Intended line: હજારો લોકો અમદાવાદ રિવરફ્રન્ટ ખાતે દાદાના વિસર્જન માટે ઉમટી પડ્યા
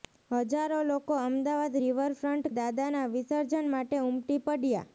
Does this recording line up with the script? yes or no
no